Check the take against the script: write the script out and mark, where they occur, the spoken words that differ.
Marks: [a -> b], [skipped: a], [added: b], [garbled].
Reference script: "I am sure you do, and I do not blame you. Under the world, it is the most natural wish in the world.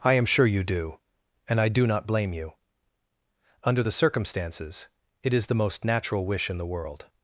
"I am sure you do, and I do not blame you. Under the [world, -> circumstances] it is the most natural wish in the world.